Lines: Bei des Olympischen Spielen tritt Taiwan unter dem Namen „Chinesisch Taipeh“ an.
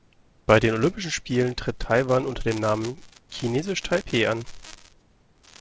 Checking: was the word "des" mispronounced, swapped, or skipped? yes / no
yes